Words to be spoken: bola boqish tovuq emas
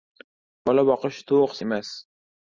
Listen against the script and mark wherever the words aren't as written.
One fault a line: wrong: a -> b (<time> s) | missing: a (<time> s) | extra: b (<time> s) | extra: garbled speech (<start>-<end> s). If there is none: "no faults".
no faults